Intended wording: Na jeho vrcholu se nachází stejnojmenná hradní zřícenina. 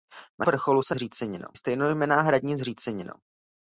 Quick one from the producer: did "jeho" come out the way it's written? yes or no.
no